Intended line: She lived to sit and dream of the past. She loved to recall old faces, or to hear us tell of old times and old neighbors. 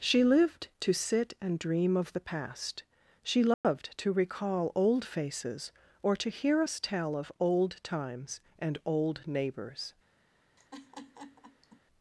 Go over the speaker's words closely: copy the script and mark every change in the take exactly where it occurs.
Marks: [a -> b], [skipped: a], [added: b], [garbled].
She lived to sit and dream of the past. She loved to recall old faces, or to hear us tell of old times and old neighbors.